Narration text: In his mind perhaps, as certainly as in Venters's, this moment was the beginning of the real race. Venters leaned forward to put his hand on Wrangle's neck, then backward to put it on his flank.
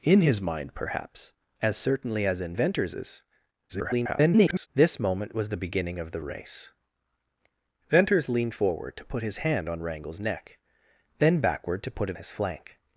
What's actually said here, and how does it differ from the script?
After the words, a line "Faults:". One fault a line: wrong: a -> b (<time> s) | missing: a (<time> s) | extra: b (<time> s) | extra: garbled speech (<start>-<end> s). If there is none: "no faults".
In his mind perhaps, as certainly as in Venters's, [garbled] this moment was the beginning of the race. Venters leaned forward to put his hand on Wrangle's neck, then backward to put it his flank.
Faults:
extra: garbled speech (3.7-4.7 s)
missing: real (6.2 s)
missing: on (12.2 s)